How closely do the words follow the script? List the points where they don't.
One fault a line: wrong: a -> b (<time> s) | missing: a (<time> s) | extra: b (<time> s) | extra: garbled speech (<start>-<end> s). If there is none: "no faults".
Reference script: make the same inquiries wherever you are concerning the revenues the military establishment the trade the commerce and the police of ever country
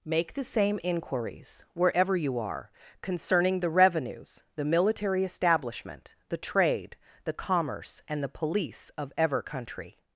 no faults